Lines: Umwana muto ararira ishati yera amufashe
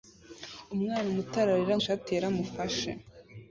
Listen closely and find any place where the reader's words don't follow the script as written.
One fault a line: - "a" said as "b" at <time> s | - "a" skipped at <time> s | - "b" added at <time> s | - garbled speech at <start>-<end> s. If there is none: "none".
none